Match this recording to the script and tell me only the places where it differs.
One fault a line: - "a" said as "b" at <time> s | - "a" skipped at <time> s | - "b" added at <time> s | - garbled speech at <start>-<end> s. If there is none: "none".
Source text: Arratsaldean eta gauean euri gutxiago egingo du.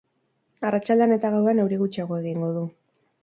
none